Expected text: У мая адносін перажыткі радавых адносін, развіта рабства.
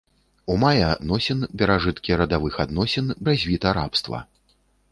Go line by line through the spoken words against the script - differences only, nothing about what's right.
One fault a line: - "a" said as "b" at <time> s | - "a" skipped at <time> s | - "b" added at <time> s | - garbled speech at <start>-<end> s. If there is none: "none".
none